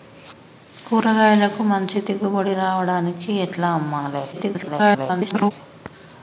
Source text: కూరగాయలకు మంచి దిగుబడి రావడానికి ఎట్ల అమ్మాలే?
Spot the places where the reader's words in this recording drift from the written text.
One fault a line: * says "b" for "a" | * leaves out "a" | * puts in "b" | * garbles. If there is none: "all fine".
* garbles